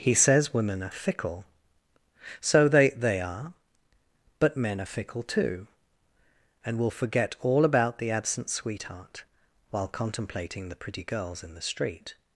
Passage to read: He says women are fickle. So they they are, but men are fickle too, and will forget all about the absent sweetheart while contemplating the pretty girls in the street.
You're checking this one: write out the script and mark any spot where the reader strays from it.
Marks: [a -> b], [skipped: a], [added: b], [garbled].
He says women are fickle. So they they are, but men are fickle too, and will forget all about the absent sweetheart while contemplating the pretty girls in the street.